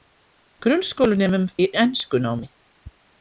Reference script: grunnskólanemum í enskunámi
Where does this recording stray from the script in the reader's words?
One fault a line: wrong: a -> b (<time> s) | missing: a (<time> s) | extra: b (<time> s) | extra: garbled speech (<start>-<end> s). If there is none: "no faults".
no faults